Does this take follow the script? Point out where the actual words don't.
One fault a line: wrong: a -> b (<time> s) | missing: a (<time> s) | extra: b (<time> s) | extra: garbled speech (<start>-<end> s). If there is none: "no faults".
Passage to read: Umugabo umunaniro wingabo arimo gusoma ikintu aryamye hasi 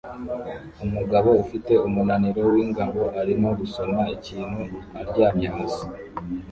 extra: ufite (1.4 s)